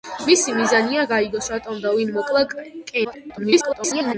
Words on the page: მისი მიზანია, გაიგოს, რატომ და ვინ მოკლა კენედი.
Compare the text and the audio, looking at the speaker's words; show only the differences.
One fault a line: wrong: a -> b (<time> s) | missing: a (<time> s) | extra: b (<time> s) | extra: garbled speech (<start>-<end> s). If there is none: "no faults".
extra: garbled speech (3.0-4.1 s)